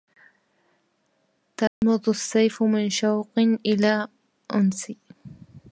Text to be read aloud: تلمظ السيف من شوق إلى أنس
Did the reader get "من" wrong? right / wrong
right